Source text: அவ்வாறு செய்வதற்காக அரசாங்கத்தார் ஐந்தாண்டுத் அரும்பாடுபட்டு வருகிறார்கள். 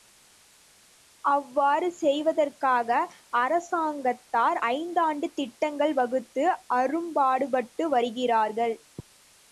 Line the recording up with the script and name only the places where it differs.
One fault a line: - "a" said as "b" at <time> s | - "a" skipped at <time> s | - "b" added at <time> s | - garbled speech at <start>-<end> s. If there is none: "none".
- "திட்டங்கள் வகுத்து" added at 5.4 s